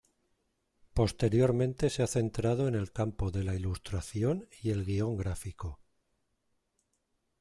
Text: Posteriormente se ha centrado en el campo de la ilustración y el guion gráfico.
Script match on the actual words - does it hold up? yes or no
yes